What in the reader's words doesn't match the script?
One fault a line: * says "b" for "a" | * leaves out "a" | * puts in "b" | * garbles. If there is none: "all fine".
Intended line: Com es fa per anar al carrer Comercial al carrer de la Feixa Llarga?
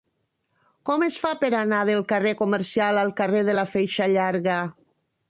* says "del" for "al"